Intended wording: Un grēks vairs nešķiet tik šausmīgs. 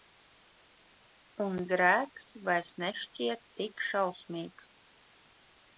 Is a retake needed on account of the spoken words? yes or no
no